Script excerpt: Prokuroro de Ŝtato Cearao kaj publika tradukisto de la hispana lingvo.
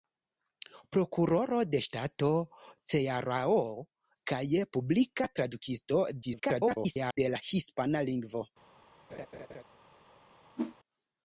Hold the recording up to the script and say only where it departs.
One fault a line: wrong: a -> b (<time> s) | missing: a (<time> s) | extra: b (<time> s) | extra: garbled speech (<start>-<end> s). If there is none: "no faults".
extra: garbled speech (6.2-7.2 s)